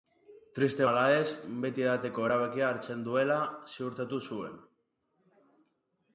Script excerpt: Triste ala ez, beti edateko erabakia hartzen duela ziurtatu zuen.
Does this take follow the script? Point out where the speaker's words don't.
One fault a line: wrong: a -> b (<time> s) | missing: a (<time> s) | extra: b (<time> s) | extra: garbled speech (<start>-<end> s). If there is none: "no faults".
no faults